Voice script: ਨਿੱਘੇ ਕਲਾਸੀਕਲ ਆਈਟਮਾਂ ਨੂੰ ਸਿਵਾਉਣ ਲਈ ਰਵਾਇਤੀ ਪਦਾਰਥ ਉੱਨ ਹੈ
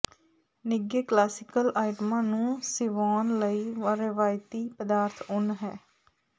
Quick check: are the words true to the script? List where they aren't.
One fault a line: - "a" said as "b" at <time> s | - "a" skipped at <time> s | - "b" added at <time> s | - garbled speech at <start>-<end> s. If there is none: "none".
none